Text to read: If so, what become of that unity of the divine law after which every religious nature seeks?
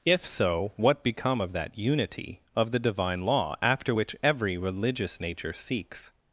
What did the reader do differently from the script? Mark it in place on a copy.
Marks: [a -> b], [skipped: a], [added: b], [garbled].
If so, what become of that unity of the divine law after which every religious nature seeks?